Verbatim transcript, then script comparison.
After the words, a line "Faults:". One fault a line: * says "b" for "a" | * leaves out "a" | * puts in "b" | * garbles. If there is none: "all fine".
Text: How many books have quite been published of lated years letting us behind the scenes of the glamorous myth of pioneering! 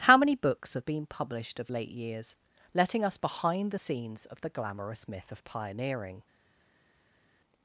How many books have been published of late years letting us behind the scenes of the glamorous myth of pioneering!
Faults:
* leaves out "quite"
* says "late" for "lated"